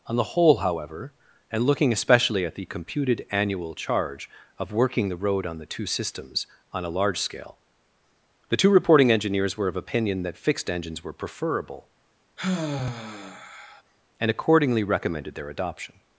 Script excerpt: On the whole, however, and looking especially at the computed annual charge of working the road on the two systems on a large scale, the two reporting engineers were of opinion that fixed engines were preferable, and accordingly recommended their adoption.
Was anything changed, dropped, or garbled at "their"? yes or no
no